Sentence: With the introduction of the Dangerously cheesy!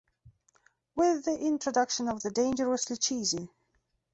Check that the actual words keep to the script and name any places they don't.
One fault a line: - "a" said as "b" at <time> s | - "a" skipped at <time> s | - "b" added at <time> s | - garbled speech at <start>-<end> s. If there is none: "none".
none